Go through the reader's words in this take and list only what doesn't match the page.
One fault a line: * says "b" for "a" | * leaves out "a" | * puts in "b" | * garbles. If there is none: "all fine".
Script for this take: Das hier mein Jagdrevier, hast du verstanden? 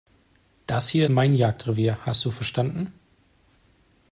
all fine